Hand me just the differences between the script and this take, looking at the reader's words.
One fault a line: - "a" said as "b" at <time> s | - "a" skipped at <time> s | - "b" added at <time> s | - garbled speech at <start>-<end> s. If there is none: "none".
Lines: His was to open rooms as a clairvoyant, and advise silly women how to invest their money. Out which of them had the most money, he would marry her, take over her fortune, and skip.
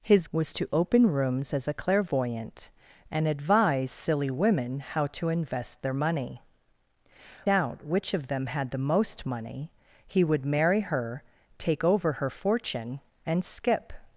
none